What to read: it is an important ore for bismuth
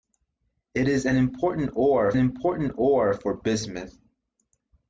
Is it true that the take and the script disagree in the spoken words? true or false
true